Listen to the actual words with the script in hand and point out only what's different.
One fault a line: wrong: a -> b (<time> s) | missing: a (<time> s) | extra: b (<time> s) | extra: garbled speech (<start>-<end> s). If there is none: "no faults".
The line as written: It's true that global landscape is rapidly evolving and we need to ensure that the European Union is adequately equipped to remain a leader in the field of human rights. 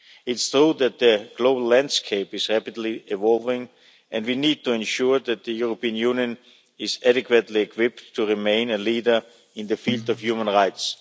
extra: the (1.0 s)